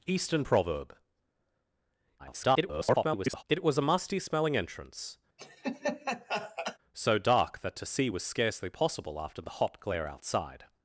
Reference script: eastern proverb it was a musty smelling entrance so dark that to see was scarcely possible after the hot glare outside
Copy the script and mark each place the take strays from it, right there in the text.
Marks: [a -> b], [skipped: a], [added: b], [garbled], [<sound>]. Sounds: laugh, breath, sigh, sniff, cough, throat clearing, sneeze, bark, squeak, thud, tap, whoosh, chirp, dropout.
eastern proverb [garbled] it was a musty smelling entrance [laugh] so dark that to see was scarcely possible after the hot glare outside